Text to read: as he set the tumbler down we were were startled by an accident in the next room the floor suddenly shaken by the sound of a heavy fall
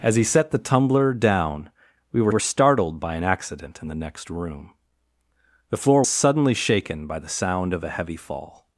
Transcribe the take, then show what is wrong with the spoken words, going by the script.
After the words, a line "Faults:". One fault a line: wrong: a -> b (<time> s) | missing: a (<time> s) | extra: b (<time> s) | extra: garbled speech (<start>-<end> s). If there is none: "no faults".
as he set the tumbler down we were were startled by an accident in the next room the floor suddenly shaken by the sound of a heavy fall
Faults:
no faults